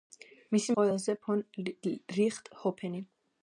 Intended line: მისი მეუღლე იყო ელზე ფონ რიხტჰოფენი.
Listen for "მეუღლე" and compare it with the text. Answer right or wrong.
wrong